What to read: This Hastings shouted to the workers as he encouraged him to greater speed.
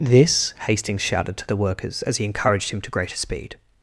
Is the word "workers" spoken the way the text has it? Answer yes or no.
yes